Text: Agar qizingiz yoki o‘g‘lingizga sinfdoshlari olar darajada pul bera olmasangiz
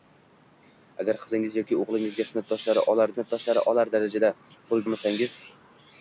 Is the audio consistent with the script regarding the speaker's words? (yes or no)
no